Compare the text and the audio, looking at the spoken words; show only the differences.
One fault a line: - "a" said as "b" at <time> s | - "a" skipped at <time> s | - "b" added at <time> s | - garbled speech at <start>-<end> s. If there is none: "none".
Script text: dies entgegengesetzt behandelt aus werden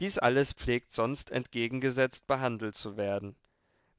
- "alles pflegt sonst" added at 0.1 s
- "aus" said as "zu" at 2.7 s